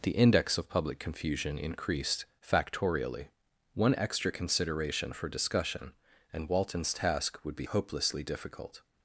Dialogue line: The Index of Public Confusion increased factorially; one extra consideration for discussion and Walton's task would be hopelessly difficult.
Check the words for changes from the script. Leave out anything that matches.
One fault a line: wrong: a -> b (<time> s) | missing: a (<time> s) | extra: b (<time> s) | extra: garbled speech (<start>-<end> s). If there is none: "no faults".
no faults